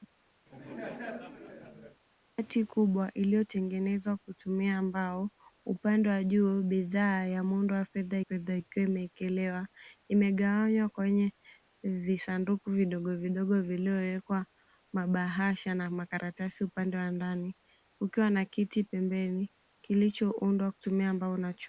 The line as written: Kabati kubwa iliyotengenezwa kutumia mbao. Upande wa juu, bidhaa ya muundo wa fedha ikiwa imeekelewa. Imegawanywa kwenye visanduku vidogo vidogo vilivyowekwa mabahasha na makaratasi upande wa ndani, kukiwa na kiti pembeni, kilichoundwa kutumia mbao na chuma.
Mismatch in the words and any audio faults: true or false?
true